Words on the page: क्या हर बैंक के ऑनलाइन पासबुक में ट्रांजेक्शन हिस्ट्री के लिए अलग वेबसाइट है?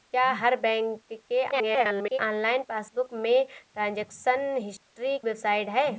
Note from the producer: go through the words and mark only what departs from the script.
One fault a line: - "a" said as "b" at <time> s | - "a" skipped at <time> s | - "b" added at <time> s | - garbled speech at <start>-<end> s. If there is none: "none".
- garbled speech at 1.5-2.2 s
- "के लिए अलग" skipped at 5.2 s